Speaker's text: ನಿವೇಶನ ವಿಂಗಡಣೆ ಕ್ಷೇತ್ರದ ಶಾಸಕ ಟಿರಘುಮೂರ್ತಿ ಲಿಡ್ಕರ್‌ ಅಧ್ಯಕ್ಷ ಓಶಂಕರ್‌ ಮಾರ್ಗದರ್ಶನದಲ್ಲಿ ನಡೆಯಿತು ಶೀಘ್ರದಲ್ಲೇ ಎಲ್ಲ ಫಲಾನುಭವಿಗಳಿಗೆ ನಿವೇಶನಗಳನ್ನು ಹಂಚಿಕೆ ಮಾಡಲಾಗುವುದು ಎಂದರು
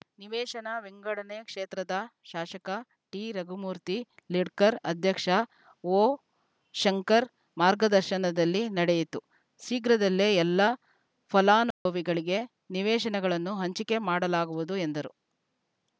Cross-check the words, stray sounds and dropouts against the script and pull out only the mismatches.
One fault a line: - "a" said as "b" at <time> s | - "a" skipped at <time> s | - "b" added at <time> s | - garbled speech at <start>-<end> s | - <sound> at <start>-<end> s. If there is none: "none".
- dropout at 11.7-11.9 s